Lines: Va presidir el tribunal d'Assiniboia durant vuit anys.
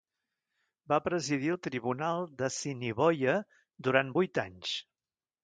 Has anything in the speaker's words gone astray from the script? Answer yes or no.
no